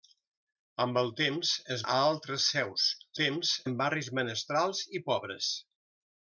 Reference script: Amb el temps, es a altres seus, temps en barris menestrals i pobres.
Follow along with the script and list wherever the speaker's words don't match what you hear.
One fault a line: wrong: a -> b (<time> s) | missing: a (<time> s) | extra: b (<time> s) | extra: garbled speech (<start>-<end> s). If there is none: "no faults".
no faults